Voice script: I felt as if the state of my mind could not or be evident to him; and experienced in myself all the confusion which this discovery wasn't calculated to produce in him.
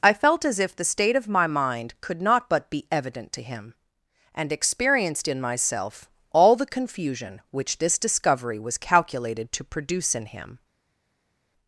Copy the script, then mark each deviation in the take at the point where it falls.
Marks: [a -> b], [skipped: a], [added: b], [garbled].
I felt as if the state of my mind could not [or -> but] be evident to him; and experienced in myself all the confusion which this discovery [wasn't -> was] calculated to produce in him.